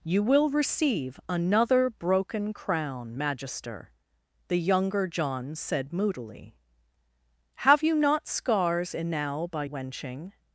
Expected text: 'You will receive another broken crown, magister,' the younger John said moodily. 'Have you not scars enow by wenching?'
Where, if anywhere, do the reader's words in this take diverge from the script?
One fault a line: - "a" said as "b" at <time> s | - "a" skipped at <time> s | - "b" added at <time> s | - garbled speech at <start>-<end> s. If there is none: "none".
none